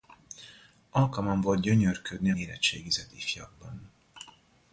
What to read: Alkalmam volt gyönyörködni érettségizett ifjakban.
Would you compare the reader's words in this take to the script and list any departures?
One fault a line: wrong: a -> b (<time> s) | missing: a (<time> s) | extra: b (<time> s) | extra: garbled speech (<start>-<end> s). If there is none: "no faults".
no faults